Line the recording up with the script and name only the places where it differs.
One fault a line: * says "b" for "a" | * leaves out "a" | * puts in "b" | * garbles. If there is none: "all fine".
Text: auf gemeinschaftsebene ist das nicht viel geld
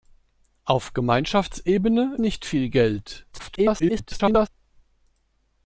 * leaves out "ist das"
* garbles